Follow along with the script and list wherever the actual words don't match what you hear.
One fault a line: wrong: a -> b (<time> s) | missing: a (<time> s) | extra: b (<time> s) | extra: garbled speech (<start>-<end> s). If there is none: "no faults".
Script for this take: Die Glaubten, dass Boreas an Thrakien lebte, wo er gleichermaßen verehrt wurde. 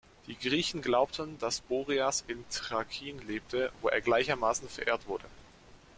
extra: Griechen (0.3 s)
wrong: an -> in (2.3 s)